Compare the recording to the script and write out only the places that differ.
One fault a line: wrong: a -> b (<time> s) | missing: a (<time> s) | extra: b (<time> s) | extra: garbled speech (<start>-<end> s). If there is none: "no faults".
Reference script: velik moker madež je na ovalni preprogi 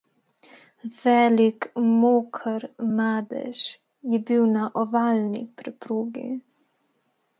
extra: bil (4.3 s)